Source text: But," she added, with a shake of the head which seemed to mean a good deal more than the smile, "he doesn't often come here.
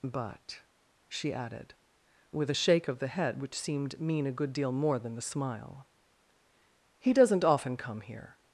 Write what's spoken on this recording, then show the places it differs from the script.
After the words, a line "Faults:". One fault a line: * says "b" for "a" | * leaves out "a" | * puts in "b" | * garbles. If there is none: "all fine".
But," she added, with a shake of the head which seemed mean a good deal more than the smile, "he doesn't often come here.
Faults:
* leaves out "to"